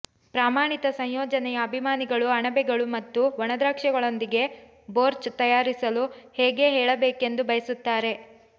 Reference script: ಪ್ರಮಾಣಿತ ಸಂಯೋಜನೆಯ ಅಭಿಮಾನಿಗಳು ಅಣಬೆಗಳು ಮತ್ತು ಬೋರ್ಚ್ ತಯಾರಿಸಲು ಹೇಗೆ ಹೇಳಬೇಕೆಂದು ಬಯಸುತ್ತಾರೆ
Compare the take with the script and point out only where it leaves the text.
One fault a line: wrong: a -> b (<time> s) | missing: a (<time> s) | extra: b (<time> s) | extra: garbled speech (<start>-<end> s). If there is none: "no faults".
extra: ಒಣದ್ರಾಕ್ಷಿಗಳೊಂದಿಗೆ (3.4 s)